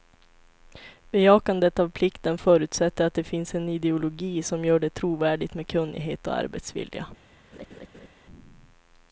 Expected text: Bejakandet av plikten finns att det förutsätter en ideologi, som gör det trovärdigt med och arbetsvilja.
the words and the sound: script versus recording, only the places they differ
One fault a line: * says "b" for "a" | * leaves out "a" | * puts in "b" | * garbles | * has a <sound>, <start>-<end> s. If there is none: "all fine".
* says "förutsätter" for "finns"
* says "finns" for "förutsätter"
* puts in "kunnighet"
* has a laugh, 7.5-8.1 s